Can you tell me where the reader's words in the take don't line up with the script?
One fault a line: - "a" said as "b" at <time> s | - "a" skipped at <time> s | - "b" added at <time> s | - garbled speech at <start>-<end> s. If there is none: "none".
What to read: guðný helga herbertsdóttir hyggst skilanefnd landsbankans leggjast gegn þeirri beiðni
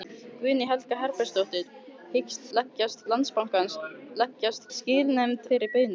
- "skilanefnd" said as "leggjast" at 2.6 s
- "gegn" said as "skilanefnd" at 4.8 s